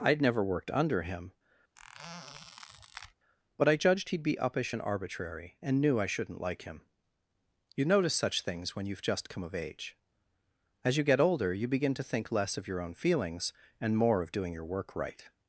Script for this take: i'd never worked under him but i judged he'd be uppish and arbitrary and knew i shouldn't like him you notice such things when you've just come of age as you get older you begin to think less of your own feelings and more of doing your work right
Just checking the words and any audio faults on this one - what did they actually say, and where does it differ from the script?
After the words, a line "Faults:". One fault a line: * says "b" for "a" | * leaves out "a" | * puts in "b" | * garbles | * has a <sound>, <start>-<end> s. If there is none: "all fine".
i'd never worked under him but i judged he'd be uppish and arbitrary and knew i shouldn't like him you notice such things when you've just come of age as you get older you begin to think less of your own feelings and more of doing your work right
Faults:
* has a squeak, 1.8-3.1 s